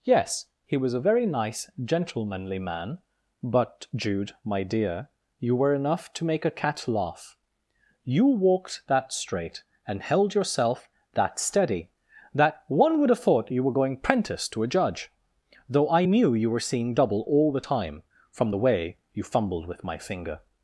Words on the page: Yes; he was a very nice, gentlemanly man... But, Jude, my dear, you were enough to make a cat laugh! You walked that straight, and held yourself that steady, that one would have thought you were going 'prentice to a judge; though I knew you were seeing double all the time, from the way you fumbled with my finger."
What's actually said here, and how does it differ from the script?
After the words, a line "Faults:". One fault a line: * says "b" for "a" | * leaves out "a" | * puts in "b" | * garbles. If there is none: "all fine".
Yes; he was a very nice, gentlemanly man... But, Jude, my dear, you were enough to make a cat laugh! You walked that straight, and held yourself that steady, that one would have thought you were going 'prentice to a judge; though I knew you were seeing double all the time, from the way you fumbled with my finger."
Faults:
all fine